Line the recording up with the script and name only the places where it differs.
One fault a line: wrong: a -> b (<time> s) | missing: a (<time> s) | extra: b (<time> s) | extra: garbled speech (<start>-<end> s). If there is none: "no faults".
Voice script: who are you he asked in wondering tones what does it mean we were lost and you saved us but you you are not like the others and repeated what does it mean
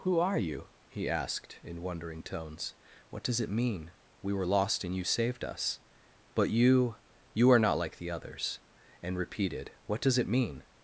no faults